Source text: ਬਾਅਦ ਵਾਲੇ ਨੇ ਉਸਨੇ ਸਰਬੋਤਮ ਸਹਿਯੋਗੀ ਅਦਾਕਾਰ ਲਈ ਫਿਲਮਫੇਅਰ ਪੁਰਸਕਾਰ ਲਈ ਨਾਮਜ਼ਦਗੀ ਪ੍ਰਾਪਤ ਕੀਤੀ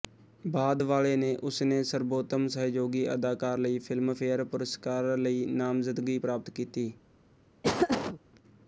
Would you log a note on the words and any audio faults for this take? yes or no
yes